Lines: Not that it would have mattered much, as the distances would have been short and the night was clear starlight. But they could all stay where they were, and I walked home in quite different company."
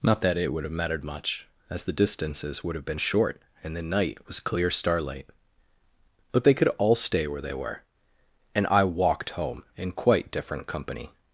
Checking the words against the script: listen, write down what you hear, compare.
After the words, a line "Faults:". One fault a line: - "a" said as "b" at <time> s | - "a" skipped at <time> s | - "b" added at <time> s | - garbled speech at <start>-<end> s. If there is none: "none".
Not that it would have mattered much, as the distances would have been short and the night was clear starlight. But they could all stay where they were, and I walked home in quite different company."
Faults:
none